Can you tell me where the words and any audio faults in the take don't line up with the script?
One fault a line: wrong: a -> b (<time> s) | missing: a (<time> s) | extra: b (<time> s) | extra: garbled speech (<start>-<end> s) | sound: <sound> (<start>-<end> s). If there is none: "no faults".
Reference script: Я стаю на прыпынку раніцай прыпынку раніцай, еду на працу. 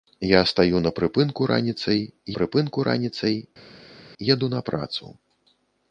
no faults